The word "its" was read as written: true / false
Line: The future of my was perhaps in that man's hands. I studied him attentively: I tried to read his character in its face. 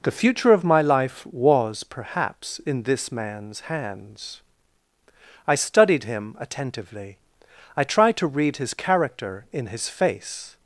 false